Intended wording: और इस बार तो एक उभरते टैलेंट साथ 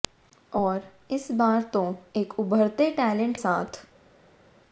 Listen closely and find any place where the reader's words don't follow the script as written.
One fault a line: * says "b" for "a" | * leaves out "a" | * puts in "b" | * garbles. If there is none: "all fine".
all fine